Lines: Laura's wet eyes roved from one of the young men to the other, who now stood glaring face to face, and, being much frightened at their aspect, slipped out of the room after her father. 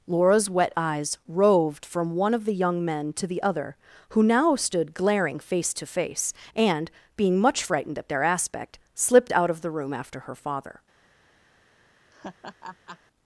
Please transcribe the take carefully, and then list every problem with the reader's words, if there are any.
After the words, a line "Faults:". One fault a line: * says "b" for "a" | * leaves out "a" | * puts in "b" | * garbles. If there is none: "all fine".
Laura's wet eyes roved from one of the young men to the other, who now stood glaring face to face, and, being much frightened at their aspect, slipped out of the room after her father.
Faults:
all fine